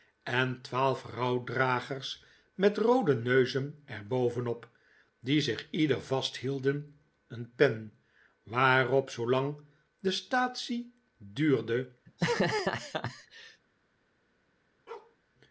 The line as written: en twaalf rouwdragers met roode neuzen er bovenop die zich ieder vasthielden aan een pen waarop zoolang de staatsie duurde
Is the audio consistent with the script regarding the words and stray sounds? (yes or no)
no